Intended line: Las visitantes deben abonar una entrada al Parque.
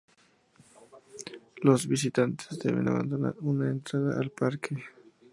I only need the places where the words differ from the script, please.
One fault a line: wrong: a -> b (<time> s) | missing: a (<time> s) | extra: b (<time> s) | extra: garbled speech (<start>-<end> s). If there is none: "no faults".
wrong: Las -> Los (1.6 s)